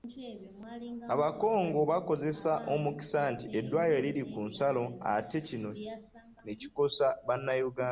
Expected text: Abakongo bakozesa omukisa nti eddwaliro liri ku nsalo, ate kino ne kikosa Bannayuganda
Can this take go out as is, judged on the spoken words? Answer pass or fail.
pass